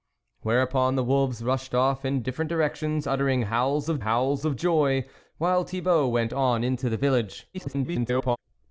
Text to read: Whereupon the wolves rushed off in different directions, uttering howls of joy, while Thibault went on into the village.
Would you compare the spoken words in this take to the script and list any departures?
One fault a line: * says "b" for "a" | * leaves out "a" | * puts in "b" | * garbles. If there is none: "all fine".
* puts in "howls of"
* garbles